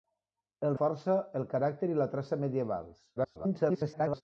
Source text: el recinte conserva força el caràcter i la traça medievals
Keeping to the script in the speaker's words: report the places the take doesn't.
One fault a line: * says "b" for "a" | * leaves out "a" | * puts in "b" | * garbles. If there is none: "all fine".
* leaves out "recinte conserva"
* garbles